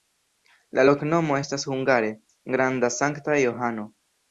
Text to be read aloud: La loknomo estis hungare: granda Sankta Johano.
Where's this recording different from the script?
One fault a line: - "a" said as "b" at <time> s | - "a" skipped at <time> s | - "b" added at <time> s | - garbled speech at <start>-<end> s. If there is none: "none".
- "estis" said as "estas" at 1.4 s